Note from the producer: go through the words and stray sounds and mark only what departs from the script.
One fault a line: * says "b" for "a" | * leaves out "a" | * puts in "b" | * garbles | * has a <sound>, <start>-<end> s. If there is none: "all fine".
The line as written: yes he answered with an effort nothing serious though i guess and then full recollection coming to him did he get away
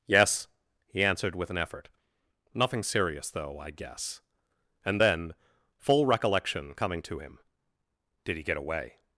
all fine